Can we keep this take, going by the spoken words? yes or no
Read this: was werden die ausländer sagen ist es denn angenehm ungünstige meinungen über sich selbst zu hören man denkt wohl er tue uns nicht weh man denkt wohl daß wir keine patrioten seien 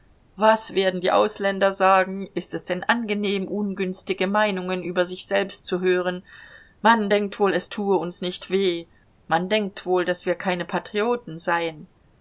no